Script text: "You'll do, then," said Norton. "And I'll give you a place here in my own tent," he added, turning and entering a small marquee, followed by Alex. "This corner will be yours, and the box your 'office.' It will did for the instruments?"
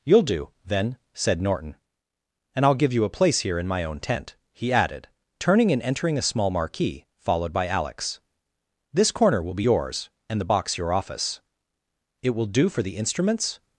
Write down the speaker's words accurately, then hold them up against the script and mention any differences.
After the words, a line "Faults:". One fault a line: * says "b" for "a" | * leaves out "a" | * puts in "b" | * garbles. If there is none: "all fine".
"You'll do, then," said Norton. "And I'll give you a place here in my own tent," he added, turning and entering a small marquee, followed by Alex. "This corner will be yours, and the box your 'office.' It will do for the instruments?"
Faults:
* says "do" for "did"